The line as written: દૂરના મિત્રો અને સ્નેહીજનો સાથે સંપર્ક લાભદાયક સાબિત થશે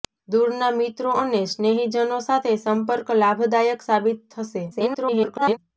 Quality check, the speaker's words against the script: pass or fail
fail